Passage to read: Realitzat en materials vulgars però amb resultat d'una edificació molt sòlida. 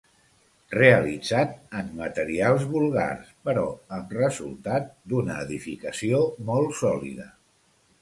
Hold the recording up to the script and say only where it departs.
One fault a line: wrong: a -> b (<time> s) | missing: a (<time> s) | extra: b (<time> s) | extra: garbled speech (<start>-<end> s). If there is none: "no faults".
no faults